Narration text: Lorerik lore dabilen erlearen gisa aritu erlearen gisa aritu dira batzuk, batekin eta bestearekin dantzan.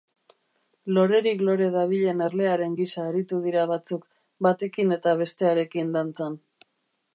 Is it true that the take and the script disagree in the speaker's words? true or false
true